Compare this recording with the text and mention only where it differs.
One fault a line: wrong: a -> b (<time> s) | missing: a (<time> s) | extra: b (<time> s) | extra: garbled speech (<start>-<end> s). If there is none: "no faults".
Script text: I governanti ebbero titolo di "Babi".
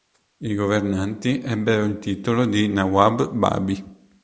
extra: il (1.8 s)
extra: Nawab (2.7 s)